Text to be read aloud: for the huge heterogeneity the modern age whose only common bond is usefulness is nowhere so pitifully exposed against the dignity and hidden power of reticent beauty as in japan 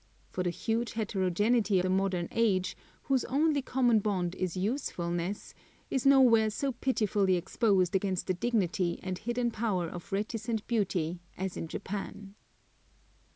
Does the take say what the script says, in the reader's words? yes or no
yes